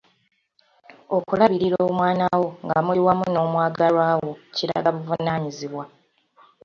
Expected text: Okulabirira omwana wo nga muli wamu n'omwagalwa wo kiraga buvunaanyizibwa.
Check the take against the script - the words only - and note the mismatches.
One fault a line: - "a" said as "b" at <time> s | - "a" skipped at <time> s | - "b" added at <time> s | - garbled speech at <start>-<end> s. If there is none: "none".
none